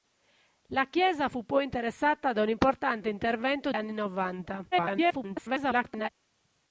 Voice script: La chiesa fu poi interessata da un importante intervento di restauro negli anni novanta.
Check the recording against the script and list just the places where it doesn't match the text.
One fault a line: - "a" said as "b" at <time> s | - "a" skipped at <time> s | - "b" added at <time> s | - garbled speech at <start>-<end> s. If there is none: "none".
- "di restauro negli" skipped at 3.7 s
- garbled speech at 4.7-6.1 s